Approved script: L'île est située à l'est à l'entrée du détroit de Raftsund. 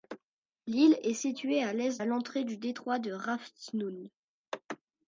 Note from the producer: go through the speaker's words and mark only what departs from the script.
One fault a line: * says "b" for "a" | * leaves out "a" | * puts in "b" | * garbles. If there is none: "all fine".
all fine